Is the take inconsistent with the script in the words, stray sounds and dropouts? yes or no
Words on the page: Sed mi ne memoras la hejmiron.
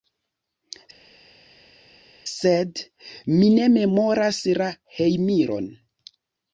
no